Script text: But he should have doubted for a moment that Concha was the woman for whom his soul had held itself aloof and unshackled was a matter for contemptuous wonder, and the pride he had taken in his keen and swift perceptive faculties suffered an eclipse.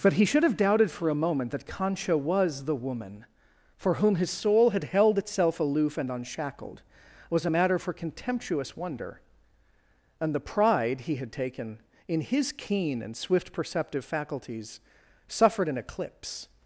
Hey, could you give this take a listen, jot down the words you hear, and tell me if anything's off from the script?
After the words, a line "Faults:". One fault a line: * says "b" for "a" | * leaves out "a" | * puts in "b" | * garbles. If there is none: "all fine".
But he should have doubted for a moment that Concha was the woman for whom his soul had held itself aloof and unshackled was a matter for contemptuous wonder, and the pride he had taken in his keen and swift perceptive faculties suffered an eclipse.
Faults:
all fine